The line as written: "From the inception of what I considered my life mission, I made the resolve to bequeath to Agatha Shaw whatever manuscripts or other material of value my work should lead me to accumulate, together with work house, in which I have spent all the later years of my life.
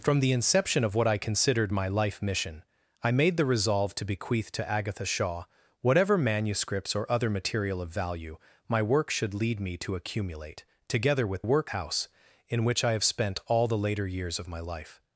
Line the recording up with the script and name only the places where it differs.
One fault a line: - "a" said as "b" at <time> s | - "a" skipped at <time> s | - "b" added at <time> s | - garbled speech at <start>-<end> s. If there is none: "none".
none